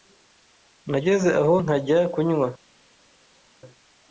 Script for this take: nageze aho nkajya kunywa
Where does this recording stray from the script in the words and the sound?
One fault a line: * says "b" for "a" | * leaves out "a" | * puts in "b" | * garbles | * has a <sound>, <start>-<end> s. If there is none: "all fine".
all fine